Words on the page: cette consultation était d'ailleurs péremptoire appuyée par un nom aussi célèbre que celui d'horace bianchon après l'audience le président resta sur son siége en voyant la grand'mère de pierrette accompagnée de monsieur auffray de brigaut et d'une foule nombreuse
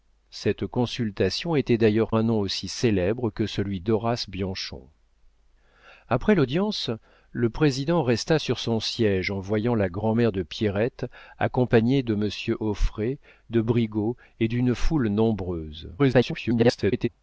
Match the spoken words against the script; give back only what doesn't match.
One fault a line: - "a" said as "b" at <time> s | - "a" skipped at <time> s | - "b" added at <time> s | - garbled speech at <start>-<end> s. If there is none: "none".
- "péremptoire appuyée par" skipped at 2.1 s
- garbled speech at 16.0-17.1 s